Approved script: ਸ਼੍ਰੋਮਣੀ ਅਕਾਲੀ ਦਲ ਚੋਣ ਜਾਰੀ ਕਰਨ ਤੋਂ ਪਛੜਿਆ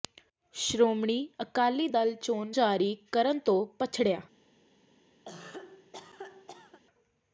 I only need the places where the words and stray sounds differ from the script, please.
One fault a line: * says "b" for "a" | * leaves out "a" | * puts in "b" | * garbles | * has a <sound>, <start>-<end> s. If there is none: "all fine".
* has a cough, 5.3-6.8 s